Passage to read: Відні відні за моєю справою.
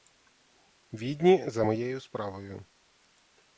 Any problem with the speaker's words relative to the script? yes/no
yes